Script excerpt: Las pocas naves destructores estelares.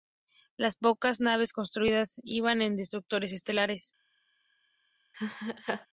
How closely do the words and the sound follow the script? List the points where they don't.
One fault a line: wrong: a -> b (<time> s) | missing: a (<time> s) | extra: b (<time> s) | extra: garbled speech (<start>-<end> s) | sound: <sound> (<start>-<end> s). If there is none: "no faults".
extra: construidas iban en (1.5 s)
sound: laugh (5.1-5.9 s)